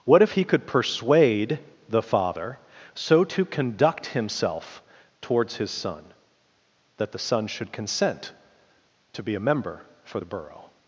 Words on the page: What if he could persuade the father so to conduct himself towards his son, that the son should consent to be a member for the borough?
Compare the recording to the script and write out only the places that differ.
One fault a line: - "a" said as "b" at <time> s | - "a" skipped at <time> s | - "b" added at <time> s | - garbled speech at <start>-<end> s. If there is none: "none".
none